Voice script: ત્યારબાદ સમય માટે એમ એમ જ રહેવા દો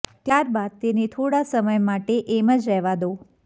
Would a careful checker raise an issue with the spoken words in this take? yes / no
yes